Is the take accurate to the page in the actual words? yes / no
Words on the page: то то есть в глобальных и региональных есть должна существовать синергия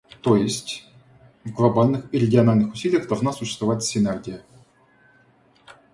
no